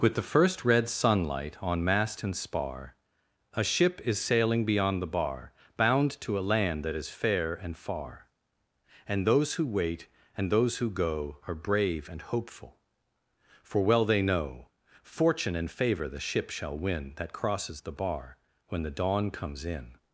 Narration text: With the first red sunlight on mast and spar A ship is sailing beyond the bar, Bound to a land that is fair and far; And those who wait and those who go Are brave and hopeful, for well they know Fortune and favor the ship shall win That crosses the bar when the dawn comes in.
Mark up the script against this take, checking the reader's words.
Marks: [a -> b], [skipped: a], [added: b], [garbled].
With the first red sunlight on mast and spar A ship is sailing beyond the bar, Bound to a land that is fair and far; And those who wait and those who go Are brave and hopeful, for well they know Fortune and favor the ship shall win That crosses the bar when the dawn comes in.